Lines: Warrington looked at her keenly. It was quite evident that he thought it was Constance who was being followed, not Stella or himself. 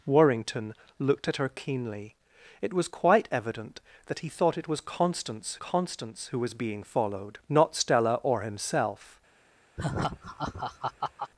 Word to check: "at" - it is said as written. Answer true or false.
true